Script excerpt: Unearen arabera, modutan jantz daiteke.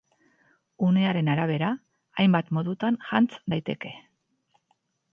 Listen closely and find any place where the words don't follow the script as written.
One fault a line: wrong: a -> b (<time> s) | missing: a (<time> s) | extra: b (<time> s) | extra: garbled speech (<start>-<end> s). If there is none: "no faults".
extra: hainbat (2.2 s)